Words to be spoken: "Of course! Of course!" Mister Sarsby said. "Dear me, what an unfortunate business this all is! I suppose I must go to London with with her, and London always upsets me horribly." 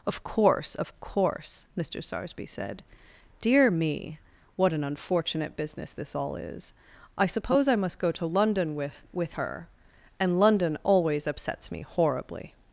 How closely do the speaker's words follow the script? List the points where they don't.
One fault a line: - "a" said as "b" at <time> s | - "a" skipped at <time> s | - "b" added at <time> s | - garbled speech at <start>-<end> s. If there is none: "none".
none